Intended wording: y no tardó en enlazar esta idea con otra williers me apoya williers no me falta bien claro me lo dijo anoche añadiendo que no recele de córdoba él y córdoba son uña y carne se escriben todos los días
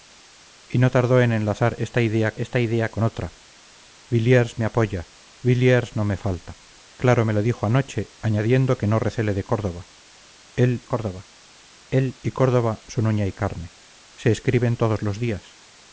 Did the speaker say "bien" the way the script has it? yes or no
no